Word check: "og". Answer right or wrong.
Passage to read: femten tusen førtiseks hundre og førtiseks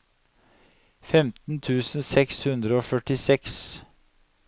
right